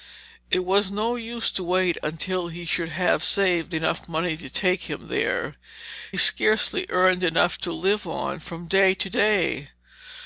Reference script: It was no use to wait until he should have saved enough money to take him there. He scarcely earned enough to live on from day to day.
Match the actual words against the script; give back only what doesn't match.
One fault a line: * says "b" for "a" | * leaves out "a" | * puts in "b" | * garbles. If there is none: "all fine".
* leaves out "He"